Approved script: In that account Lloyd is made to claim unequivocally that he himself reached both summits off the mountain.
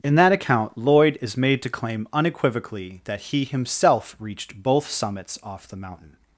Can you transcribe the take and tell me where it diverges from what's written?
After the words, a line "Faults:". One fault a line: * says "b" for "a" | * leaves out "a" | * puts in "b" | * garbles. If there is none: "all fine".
In that account Lloyd is made to claim unequivocally that he himself reached both summits off the mountain.
Faults:
all fine